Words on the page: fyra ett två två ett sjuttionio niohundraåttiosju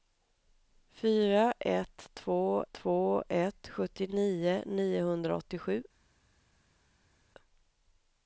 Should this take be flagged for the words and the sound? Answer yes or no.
no